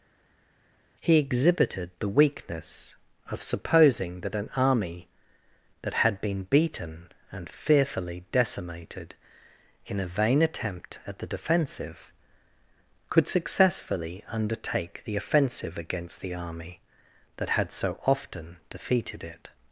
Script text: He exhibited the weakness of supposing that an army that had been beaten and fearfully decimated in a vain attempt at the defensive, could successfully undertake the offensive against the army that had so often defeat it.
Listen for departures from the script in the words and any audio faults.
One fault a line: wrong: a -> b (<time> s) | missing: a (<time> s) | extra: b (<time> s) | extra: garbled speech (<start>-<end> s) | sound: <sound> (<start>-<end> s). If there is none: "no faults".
wrong: defeat -> defeated (18.7 s)